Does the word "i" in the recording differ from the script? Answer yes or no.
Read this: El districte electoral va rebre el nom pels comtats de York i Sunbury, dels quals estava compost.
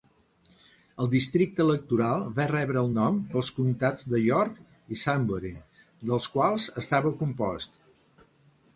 no